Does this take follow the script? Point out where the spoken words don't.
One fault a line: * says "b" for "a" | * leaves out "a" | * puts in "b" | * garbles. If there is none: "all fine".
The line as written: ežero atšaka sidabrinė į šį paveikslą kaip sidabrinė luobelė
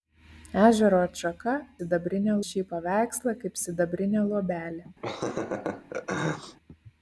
all fine